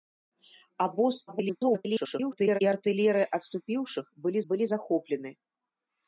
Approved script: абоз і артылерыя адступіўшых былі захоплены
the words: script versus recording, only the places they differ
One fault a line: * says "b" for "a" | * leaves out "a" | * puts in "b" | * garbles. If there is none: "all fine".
* garbles
* puts in "былі"